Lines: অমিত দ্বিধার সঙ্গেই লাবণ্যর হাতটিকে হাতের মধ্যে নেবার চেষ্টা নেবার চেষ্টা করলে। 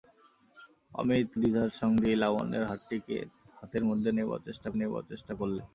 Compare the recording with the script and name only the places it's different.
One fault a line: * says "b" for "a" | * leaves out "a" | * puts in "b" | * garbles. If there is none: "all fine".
all fine